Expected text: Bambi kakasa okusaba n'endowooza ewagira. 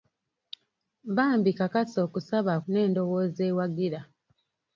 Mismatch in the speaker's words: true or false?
false